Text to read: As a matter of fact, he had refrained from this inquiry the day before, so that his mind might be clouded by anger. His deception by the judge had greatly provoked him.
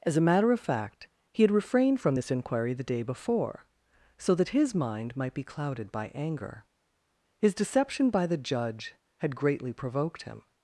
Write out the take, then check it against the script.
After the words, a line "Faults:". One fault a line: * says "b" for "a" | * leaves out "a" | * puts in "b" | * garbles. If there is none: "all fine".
As a matter of fact, he had refrained from this inquiry the day before, so that his mind might be clouded by anger. His deception by the judge had greatly provoked him.
Faults:
all fine